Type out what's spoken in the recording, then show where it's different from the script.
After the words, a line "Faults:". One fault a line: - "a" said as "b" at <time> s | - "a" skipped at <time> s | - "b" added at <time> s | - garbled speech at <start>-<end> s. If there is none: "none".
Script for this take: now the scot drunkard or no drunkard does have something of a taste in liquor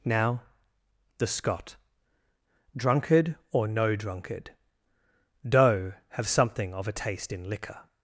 now the scot drunkard or no drunkard doe have something of a taste in liquor
Faults:
- "does" said as "doe" at 5.5 s